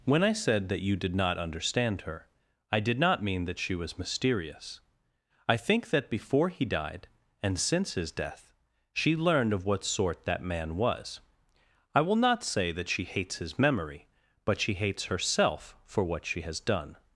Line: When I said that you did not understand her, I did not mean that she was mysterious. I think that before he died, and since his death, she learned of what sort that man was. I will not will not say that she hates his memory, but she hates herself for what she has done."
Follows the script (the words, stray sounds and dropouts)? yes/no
no